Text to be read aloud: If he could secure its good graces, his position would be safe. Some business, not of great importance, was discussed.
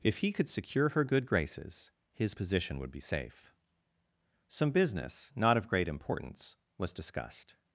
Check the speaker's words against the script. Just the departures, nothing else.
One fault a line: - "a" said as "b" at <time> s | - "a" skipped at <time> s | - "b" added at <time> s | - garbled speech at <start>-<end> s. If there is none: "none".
- "its" said as "her" at 0.9 s